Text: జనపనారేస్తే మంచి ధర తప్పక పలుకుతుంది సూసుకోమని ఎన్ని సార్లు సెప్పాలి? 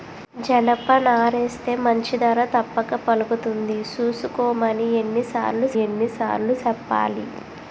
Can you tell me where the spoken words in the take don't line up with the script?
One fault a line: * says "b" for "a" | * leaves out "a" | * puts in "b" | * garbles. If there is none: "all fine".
* puts in "ఎన్ని సార్లు"